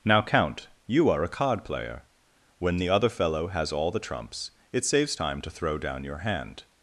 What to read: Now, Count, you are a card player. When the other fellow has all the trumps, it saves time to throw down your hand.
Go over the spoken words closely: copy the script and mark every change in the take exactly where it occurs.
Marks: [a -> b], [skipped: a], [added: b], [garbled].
Now, Count, you are a card player. When the other fellow has all the trumps, it saves time to throw down your hand.